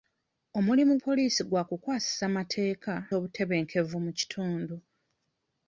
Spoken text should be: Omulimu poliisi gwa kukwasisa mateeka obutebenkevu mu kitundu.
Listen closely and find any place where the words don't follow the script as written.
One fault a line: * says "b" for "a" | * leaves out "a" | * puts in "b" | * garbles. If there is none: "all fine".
all fine